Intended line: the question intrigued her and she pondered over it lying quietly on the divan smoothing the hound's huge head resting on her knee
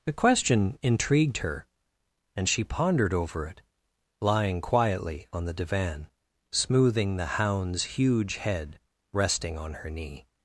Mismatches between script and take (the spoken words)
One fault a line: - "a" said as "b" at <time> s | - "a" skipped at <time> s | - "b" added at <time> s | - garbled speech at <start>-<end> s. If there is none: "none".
none